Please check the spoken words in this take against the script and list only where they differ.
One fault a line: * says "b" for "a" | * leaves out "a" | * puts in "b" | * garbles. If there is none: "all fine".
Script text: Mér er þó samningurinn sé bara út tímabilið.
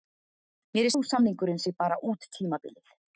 all fine